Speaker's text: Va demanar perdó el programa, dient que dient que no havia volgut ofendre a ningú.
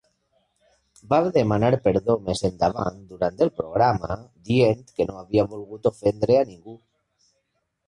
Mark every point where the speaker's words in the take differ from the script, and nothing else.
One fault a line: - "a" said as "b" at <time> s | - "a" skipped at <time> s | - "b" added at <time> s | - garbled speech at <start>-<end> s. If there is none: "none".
- "més endavant durant" added at 2.3 s
- "dient que" skipped at 5.1 s